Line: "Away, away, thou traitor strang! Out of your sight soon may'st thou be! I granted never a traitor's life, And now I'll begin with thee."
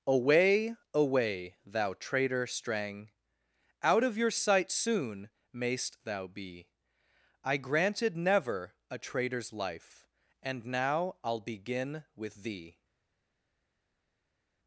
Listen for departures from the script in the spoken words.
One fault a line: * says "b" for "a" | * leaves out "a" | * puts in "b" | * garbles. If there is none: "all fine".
all fine